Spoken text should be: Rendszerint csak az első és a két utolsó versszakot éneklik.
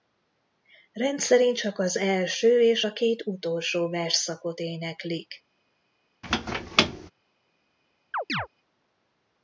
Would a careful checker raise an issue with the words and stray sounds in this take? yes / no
yes